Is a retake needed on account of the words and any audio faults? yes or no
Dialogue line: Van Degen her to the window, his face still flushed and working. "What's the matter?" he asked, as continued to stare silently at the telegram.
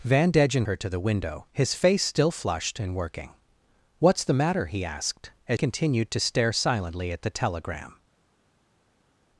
no